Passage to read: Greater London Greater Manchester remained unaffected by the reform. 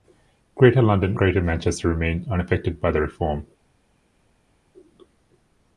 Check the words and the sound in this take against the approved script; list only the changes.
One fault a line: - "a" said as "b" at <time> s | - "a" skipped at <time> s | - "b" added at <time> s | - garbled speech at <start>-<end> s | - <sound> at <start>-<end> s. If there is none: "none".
none